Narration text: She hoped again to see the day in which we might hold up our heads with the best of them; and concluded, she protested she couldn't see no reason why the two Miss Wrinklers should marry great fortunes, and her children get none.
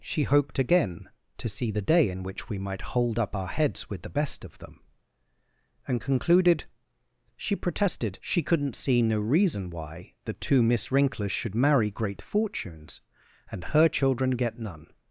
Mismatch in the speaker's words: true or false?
false